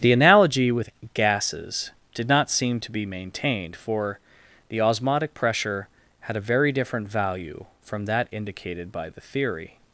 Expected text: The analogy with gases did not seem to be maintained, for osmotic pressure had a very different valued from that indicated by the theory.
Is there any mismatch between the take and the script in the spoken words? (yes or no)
yes